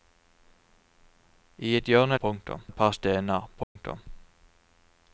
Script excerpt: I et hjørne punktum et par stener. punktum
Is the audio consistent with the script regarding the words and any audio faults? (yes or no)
no